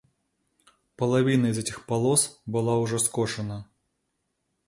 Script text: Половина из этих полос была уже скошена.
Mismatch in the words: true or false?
false